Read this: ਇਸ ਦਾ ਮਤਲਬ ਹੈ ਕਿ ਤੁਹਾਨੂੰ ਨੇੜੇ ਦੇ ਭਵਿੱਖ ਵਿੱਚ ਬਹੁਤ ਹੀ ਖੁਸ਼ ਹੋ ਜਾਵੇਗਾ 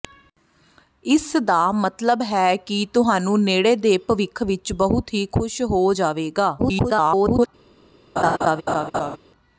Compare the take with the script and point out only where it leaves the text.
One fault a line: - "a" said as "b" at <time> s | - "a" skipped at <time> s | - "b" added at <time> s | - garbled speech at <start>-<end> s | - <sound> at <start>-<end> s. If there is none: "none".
- garbled speech at 6.6-7.5 s
- laugh at 8.2-9.2 s